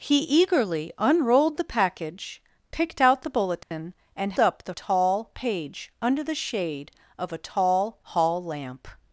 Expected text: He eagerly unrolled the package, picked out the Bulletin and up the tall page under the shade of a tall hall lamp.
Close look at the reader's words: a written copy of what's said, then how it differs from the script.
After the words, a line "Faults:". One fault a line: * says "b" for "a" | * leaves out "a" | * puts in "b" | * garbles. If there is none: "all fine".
He eagerly unrolled the package, picked out the Bulletin and up the tall page under the shade of a tall hall lamp.
Faults:
all fine